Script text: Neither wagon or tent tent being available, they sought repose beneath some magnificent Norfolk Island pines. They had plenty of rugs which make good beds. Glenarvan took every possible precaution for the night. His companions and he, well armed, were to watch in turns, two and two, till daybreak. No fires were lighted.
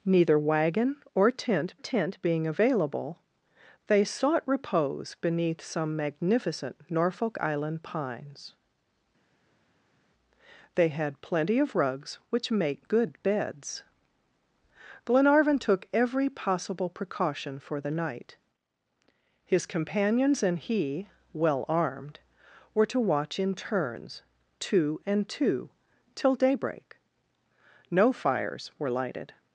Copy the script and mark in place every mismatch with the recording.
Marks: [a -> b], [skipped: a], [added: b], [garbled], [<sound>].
Neither wagon or tent tent being available, they sought repose beneath some magnificent Norfolk Island pines. They had plenty of rugs which make good beds. Glenarvan took every possible precaution for the night. His companions and he, well armed, were to watch in turns, two and two, till daybreak. No fires were lighted.